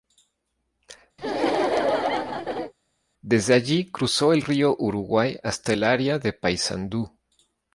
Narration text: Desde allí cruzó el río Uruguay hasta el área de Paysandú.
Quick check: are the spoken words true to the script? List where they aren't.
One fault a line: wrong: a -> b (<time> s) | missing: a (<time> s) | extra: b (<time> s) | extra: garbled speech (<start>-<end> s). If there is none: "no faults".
no faults